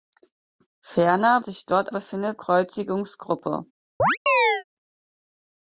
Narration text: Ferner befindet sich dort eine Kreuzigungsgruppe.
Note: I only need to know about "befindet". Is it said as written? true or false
false